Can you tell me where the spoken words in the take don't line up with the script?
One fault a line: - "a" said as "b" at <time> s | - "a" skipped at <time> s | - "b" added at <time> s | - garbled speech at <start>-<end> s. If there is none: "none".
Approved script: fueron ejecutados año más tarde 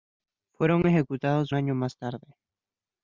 none